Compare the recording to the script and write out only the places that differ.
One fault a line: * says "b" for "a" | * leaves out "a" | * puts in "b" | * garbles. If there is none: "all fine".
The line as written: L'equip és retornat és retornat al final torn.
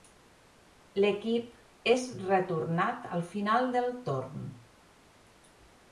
* leaves out "és retornat"
* puts in "del"